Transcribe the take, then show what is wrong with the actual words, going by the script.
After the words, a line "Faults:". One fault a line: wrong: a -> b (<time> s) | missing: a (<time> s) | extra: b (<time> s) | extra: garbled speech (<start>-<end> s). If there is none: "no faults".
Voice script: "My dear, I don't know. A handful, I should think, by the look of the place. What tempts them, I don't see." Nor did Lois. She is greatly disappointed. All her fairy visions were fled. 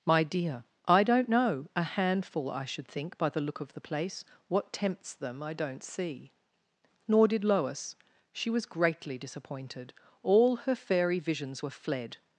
"My dear, I don't know. A handful, I should think, by the look of the place. What tempts them, I don't see." Nor did Lois. She was greatly disappointed. All her fairy visions were fled.
Faults:
wrong: is -> was (8.5 s)